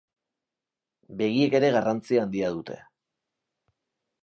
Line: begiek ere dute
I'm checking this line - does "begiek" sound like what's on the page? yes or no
yes